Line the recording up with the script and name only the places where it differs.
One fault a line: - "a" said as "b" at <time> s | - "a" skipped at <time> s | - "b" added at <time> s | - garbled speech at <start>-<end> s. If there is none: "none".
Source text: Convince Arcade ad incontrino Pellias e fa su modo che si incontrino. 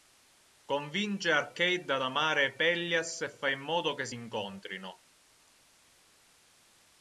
- "incontrino" said as "amare" at 2.0 s
- "su" said as "in" at 3.5 s